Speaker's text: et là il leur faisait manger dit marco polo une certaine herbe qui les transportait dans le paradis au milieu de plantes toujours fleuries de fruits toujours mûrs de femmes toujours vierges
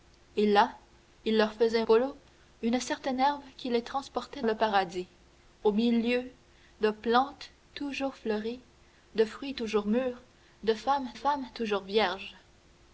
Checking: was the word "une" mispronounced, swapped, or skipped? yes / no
no